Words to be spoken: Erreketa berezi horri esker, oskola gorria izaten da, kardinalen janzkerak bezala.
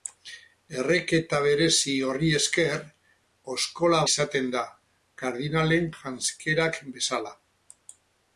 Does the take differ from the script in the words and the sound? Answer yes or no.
yes